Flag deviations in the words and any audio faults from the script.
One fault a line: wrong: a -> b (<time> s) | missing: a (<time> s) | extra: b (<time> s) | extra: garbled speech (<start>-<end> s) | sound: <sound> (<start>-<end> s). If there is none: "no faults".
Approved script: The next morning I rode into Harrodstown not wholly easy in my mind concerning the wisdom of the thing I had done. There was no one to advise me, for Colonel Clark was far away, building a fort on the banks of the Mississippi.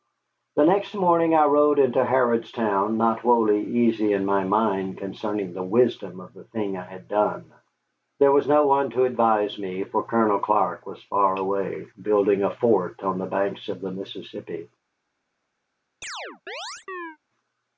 sound: chirp (16.0-17.2 s)